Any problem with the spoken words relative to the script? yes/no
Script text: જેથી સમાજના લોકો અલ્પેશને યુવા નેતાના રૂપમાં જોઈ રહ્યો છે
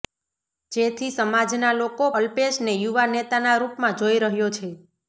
no